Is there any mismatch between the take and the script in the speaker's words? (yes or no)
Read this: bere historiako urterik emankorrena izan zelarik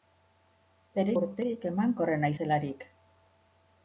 yes